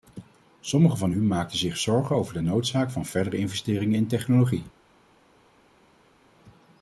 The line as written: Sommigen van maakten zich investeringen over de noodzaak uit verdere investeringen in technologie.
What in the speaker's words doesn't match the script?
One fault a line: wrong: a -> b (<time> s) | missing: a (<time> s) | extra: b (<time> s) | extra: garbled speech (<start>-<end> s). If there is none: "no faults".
extra: u (1.1 s)
wrong: investeringen -> zorgen (1.8 s)
wrong: uit -> van (2.9 s)